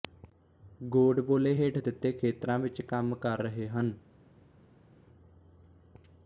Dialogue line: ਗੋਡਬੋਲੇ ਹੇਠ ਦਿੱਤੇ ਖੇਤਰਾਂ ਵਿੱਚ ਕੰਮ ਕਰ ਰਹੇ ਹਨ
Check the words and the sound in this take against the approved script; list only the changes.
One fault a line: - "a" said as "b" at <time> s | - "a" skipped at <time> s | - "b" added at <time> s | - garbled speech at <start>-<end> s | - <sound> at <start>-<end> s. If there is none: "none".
none